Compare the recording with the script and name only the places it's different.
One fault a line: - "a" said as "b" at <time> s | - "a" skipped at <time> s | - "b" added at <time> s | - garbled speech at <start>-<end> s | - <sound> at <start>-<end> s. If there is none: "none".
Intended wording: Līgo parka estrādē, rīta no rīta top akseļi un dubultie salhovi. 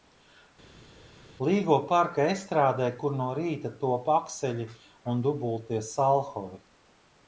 - "rīta" said as "kur" at 3.0 s